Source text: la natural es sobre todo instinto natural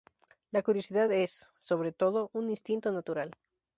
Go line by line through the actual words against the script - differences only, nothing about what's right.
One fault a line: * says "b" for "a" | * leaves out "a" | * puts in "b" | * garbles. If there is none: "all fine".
* says "curiosidad" for "natural"
* puts in "un"